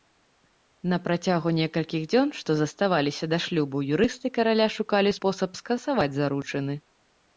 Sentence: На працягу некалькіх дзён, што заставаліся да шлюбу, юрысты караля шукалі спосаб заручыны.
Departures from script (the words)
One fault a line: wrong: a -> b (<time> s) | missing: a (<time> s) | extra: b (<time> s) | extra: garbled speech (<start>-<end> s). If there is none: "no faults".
extra: скасаваць (5.6 s)